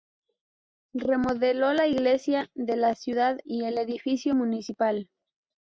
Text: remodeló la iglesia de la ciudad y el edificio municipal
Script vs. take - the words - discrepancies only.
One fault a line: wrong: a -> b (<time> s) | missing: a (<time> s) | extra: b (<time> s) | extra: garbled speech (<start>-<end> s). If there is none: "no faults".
no faults